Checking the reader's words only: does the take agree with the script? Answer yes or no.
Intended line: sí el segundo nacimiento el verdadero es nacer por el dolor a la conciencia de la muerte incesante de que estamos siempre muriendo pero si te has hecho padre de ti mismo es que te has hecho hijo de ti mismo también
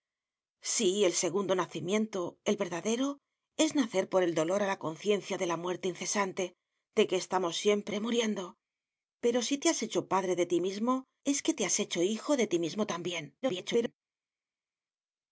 no